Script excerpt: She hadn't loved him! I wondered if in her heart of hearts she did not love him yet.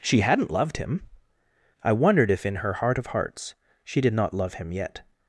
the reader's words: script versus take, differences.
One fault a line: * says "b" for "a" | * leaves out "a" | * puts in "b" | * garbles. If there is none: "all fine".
all fine